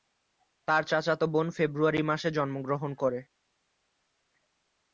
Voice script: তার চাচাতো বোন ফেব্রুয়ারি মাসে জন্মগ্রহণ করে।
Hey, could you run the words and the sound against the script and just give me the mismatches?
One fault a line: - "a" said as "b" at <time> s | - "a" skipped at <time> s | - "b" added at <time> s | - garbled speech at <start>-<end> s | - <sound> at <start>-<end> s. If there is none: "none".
none